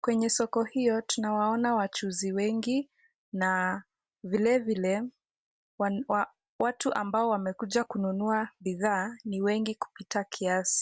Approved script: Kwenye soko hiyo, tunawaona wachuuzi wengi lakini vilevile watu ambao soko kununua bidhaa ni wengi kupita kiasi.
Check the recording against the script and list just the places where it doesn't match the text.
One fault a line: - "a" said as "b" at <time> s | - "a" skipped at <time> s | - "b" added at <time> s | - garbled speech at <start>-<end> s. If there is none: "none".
- "lakini" said as "na" at 3.3 s
- "soko" said as "wamekuja" at 7.3 s